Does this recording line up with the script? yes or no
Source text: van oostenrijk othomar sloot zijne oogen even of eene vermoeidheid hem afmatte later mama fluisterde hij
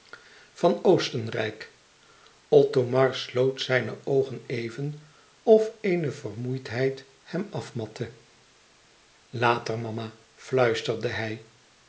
yes